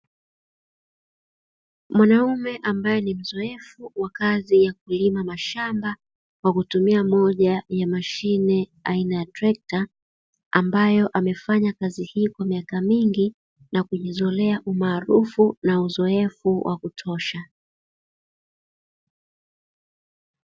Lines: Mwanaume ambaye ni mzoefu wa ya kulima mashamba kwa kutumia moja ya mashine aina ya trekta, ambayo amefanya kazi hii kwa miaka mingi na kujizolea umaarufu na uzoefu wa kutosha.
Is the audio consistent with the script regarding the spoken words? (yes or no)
no